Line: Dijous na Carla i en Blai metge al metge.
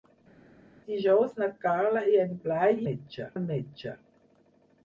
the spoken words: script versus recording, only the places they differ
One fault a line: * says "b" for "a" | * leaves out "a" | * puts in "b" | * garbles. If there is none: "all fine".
all fine